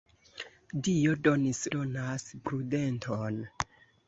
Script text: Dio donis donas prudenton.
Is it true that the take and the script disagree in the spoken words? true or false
false